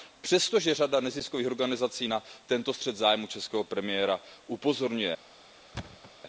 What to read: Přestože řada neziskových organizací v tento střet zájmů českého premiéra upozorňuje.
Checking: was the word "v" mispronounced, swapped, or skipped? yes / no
yes